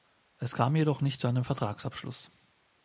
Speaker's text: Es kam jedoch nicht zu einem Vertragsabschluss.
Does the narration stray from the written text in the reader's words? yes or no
no